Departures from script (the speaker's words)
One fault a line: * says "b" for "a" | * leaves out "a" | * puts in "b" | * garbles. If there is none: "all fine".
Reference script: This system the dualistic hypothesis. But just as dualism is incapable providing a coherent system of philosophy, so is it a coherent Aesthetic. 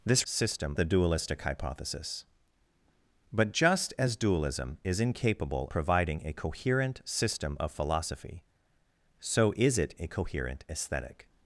all fine